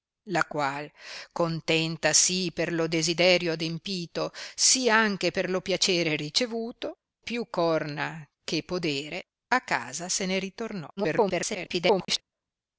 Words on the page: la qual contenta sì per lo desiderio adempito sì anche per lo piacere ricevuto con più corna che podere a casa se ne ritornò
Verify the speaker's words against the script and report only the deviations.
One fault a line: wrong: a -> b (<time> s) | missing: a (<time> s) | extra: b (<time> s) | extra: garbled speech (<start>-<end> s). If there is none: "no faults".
missing: con (7.0 s)
extra: garbled speech (11.0-12.2 s)